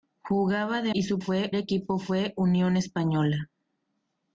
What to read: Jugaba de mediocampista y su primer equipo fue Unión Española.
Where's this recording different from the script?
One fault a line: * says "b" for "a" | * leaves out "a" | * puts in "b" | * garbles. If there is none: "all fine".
* leaves out "mediocampista"
* says "fue" for "primer"